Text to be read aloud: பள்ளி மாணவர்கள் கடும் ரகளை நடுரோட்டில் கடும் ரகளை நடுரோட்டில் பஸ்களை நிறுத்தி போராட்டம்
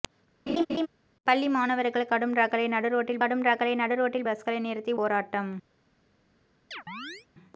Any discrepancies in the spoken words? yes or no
no